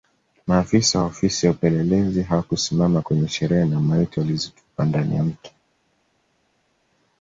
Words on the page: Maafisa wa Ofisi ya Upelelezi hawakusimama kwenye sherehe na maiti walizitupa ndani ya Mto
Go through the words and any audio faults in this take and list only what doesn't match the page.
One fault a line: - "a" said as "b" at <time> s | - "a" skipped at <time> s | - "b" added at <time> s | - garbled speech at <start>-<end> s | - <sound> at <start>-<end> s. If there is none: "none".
none